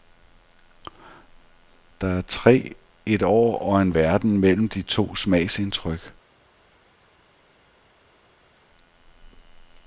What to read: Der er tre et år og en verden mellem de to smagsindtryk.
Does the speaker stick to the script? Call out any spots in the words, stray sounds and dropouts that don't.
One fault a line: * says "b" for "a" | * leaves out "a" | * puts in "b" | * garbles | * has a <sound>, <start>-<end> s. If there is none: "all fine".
all fine